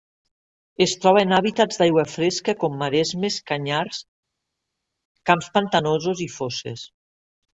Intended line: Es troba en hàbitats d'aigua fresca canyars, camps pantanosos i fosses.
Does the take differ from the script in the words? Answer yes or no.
yes